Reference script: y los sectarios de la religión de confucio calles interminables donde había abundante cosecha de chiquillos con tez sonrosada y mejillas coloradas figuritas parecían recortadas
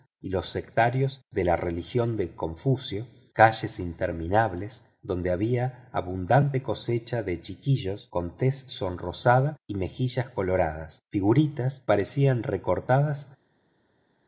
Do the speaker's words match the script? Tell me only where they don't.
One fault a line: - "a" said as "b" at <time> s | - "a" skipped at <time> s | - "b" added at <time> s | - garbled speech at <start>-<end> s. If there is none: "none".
none